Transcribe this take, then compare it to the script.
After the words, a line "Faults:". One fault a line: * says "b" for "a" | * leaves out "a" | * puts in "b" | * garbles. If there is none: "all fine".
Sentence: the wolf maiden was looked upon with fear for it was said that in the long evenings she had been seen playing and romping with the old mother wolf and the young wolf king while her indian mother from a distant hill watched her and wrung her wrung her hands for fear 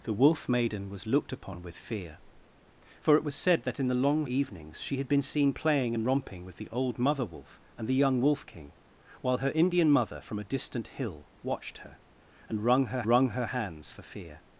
the wolf maiden was looked upon with fear for it was said that in the long evenings she had been seen playing and romping with the old mother wolf and the young wolf king while her indian mother from a distant hill watched her and wrung her wrung her hands for fear
Faults:
all fine